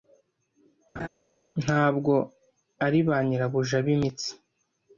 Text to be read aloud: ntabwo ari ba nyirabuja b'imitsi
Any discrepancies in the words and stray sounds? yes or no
yes